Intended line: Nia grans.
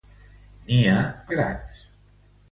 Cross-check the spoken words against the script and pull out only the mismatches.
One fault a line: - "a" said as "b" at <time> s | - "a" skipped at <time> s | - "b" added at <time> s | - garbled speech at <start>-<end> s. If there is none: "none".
none